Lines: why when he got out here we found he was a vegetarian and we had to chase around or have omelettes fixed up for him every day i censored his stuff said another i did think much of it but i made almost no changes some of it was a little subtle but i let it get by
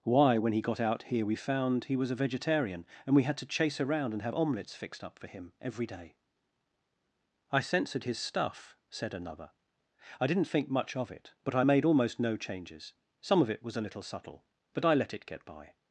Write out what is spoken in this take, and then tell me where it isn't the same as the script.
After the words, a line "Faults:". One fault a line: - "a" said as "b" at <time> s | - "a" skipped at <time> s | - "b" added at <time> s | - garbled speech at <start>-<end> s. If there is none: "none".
why when he got out here we found he was a vegetarian and we had to chase around and have omelettes fixed up for him every day i censored his stuff said another i didn't think much of it but i made almost no changes some of it was a little subtle but i let it get by
Faults:
- "or" said as "and" at 4.1 s
- "did" said as "didn't" at 10.3 s